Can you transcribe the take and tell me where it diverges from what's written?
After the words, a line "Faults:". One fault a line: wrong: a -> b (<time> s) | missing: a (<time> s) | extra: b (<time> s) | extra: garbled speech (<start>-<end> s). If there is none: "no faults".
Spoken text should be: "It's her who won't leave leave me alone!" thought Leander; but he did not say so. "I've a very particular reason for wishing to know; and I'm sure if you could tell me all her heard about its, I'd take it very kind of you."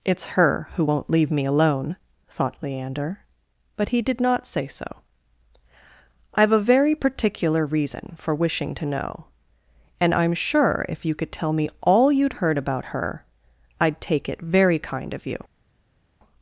"It's her who won't leave me alone!" thought Leander; but he did not say so. "I've a very particular reason for wishing to know; and I'm sure if you could tell me all you'd heard about her, I'd take it very kind of you."
Faults:
missing: leave (1.3 s)
wrong: her -> you'd (12.1 s)
wrong: its -> her (12.9 s)